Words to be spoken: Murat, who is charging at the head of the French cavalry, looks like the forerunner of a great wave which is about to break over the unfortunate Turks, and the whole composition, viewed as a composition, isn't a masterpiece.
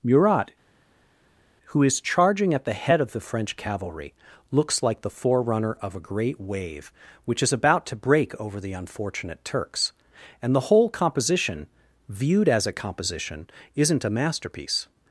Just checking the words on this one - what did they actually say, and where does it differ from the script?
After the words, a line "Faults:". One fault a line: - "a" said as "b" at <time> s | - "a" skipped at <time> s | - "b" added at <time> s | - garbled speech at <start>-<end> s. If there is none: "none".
Murat, who is charging at the head of the French cavalry, looks like the forerunner of a great wave which is about to break over the unfortunate Turks, and the whole composition, viewed as a composition, isn't a masterpiece.
Faults:
none